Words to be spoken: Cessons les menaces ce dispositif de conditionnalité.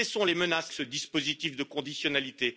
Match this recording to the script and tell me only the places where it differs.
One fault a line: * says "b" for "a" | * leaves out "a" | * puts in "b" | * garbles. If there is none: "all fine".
all fine